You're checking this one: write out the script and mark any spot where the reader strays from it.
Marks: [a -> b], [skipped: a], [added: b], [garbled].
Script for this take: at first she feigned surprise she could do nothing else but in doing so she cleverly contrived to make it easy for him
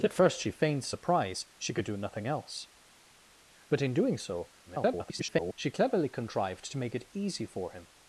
at first she feigned surprise she could do nothing else but in doing so [garbled] she cleverly contrived to make it easy for him